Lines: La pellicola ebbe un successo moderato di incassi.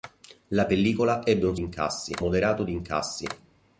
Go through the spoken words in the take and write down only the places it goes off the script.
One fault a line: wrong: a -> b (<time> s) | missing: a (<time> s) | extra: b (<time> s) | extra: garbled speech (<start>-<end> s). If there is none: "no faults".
wrong: successo -> incassi (1.6 s)